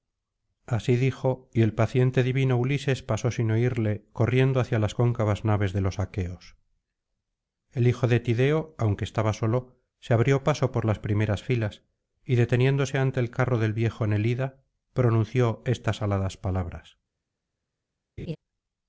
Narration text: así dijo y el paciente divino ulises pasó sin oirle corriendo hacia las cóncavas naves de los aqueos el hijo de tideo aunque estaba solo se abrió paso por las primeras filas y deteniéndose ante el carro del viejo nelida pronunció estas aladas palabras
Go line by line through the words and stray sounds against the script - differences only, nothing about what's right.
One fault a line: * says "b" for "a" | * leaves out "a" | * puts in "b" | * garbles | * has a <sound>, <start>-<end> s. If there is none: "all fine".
* has a laugh, 18.2-18.4 s